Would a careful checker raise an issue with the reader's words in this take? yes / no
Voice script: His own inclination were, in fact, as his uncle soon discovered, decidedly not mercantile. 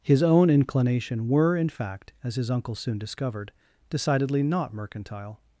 no